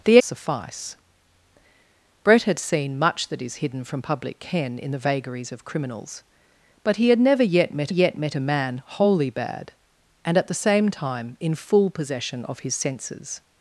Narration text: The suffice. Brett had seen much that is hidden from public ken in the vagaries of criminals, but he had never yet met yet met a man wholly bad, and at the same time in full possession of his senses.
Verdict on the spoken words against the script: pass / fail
pass